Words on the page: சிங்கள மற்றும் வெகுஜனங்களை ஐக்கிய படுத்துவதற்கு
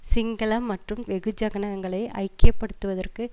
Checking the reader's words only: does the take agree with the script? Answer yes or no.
yes